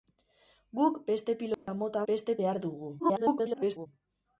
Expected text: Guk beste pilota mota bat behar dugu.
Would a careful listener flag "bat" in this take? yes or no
yes